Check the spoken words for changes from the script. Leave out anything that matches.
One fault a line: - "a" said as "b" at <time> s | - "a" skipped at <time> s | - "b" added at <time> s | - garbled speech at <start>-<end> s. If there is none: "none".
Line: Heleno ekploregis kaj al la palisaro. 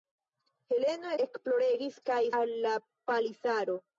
none